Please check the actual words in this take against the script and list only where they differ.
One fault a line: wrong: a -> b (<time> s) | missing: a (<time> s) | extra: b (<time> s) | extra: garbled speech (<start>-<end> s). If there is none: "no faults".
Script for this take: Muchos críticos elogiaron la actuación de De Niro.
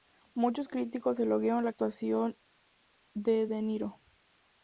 no faults